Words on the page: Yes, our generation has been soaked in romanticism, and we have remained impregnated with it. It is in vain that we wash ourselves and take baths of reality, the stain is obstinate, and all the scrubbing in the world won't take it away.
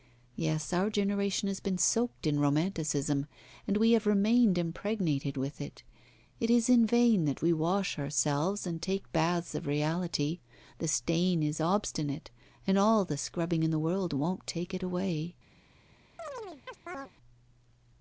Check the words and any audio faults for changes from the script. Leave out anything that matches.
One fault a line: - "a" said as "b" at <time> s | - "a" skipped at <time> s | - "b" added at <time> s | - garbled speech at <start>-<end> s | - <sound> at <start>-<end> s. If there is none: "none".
- chirp at 16.2-17.1 s